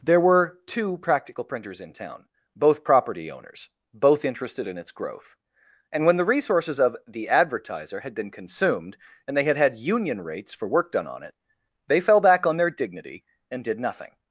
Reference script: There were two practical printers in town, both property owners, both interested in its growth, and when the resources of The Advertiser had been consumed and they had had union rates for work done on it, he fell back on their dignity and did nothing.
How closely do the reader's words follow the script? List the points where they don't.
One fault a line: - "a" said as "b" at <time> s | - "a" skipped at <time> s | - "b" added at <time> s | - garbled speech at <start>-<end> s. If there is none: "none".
- "he" said as "they" at 11.9 s